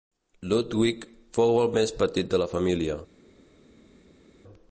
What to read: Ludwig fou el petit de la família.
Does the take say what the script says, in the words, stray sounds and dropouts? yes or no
no